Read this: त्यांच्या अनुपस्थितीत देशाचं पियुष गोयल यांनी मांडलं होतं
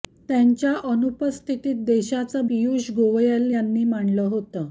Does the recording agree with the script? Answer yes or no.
yes